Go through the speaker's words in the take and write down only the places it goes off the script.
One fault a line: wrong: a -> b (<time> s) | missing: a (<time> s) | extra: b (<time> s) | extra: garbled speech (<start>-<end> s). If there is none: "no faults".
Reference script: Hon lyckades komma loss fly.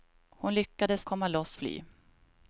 no faults